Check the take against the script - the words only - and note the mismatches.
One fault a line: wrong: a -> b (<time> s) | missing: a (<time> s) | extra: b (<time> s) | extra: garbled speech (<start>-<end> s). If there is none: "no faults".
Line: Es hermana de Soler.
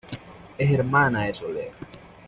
no faults